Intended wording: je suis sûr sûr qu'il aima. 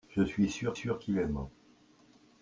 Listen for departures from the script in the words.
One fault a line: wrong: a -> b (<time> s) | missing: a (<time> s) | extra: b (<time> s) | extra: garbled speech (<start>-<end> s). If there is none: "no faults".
no faults